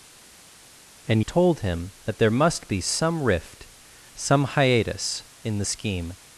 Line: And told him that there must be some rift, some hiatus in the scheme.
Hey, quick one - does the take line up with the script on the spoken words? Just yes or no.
yes